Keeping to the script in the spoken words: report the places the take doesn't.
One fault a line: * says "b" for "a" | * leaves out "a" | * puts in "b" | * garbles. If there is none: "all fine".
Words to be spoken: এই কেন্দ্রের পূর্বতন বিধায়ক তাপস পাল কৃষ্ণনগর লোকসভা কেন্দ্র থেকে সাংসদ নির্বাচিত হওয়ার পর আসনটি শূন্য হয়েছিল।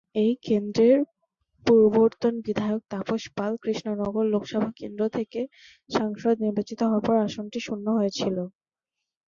all fine